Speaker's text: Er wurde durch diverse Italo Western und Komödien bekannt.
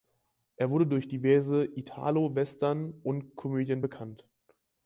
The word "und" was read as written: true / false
true